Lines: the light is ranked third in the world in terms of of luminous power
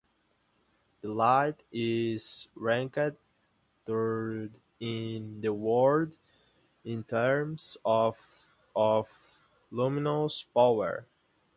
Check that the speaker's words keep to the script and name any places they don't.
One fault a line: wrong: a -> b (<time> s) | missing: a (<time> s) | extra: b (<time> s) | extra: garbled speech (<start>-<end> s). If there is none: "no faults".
no faults